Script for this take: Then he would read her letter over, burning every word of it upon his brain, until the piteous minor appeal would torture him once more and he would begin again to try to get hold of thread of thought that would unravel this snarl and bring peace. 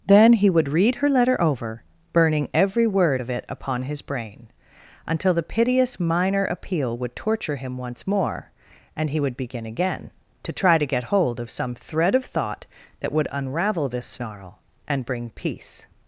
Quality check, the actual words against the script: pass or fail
fail